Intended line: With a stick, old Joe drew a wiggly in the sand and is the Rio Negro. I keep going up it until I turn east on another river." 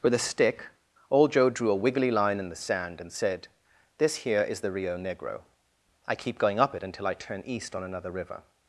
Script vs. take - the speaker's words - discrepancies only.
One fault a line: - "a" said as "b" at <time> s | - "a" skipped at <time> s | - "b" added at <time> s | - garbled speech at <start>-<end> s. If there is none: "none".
- "line" added at 2.1 s
- "said This here" added at 3.1 s